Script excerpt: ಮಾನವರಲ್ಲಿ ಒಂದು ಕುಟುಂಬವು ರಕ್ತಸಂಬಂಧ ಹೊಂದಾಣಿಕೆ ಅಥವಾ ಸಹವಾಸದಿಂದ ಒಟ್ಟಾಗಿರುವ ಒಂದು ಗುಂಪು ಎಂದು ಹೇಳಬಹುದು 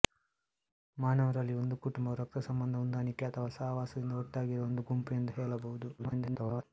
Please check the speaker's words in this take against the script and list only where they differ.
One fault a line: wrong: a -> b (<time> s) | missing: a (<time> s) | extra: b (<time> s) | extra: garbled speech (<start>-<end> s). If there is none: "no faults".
extra: garbled speech (6.0-6.6 s)